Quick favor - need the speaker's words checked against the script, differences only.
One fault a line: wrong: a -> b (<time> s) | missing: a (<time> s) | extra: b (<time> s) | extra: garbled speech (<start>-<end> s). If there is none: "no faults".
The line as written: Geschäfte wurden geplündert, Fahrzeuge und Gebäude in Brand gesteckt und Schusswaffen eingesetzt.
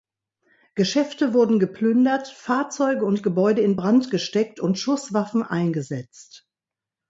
no faults